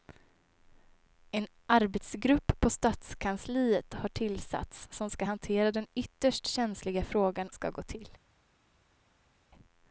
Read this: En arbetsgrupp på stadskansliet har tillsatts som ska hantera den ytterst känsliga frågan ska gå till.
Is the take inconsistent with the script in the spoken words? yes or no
no